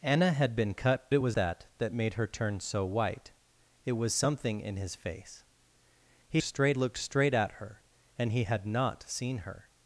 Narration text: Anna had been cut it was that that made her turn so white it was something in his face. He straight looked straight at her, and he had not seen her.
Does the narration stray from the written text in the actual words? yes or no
no